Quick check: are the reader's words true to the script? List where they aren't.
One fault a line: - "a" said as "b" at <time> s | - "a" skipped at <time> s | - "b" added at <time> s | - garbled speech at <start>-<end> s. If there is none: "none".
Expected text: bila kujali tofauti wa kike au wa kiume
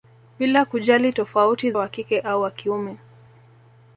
none